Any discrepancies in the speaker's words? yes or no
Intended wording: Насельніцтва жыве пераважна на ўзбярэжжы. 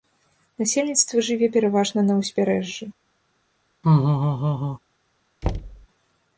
no